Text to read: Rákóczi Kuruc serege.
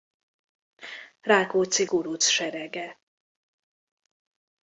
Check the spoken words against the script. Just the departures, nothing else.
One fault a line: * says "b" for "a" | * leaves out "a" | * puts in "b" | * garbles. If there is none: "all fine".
all fine